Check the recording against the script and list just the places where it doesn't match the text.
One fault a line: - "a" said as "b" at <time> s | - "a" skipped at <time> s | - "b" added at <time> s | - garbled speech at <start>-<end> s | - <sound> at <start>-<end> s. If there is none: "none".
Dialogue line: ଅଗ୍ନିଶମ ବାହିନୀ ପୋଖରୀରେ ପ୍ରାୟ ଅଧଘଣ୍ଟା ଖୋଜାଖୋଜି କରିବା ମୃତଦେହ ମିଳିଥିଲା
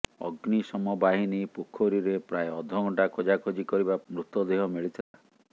- dropout at 5.0-5.1 s